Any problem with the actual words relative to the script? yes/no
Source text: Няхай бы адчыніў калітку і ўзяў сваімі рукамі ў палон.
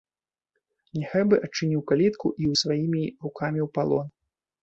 yes